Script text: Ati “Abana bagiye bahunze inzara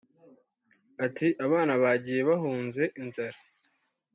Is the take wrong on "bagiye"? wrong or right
right